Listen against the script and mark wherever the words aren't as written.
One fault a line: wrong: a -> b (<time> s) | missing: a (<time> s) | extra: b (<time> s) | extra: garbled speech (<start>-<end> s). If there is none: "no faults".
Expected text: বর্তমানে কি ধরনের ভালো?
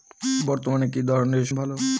no faults